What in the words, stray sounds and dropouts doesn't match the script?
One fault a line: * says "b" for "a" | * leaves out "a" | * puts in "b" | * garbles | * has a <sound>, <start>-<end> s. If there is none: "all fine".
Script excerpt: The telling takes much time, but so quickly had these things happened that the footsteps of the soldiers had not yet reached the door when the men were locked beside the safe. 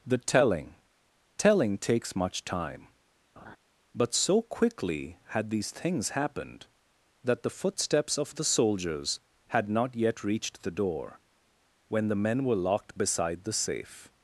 * puts in "telling"
* has a laugh, 3.4-3.6 s